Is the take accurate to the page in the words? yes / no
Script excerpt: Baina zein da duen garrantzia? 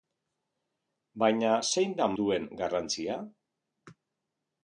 yes